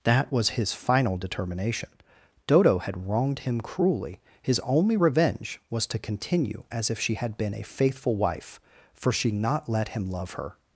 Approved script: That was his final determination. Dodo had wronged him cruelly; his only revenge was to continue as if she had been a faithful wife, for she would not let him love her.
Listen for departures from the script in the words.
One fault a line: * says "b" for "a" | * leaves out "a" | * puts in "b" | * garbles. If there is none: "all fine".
* leaves out "would"